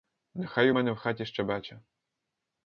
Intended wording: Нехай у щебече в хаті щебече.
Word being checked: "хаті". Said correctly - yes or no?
yes